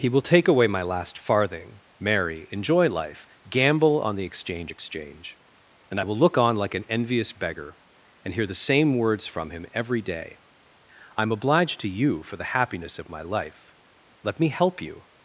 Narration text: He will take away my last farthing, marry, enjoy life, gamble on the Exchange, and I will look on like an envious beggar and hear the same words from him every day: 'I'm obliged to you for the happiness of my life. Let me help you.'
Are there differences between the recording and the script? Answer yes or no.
yes